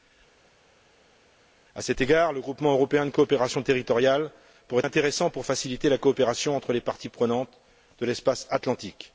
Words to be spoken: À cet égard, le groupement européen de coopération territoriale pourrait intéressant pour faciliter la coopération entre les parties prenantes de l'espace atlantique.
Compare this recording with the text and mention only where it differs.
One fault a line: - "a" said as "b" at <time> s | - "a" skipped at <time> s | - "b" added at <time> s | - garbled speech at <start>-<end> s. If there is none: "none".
none